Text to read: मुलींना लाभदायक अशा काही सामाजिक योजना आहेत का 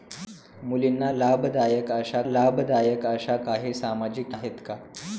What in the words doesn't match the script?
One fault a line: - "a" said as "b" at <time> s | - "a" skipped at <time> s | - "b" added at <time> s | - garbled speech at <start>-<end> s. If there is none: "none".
- "लाभदायक अशा" added at 2.2 s
- "योजना" skipped at 4.4 s